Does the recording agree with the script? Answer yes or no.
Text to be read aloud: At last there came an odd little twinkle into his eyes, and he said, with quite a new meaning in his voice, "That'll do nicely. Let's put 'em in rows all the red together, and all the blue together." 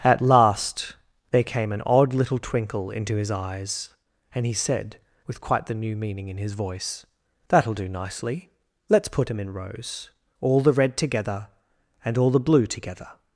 no